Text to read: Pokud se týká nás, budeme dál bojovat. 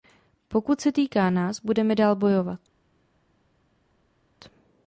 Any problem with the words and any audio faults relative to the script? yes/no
no